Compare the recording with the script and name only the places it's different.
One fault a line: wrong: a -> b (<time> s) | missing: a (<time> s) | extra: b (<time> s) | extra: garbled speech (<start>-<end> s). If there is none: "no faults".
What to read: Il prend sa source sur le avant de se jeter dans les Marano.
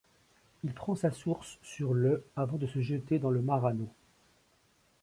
wrong: les -> le (3.3 s)